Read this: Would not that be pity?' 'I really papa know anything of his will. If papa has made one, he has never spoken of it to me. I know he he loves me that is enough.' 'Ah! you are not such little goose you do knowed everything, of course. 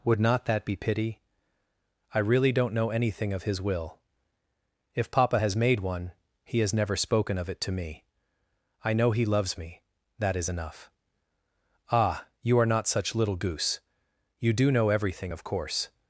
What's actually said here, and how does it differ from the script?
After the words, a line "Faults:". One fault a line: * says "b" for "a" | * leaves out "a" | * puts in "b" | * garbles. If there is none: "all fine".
Would not that be pity?' 'I really don't know anything of his will. If papa has made one, he has never spoken of it to me. I know he loves me that is enough.' 'Ah! you are not such little goose you do know everything, of course.
Faults:
* says "don't" for "papa"
* leaves out "he"
* says "know" for "knowed"